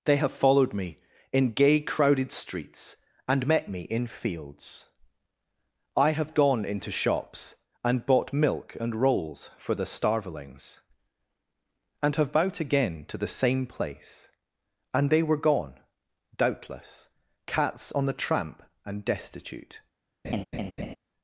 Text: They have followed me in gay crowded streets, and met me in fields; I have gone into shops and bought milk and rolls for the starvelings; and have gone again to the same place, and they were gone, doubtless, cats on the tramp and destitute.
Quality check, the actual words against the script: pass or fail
fail